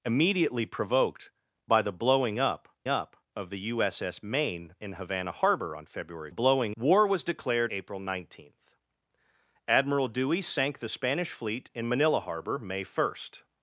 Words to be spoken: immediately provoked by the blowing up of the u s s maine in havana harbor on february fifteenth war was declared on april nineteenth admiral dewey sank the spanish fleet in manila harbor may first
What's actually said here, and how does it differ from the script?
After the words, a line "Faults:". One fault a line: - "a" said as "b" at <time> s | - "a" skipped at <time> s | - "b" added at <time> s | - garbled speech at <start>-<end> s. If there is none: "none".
immediately provoked by the blowing up up of the u s s maine in havana harbor on february blowing war was declared april nineteenth admiral dewey sank the spanish fleet in manila harbor may first
Faults:
- "up" added at 2.9 s
- "fifteenth" said as "blowing" at 6.3 s
- "on" skipped at 7.7 s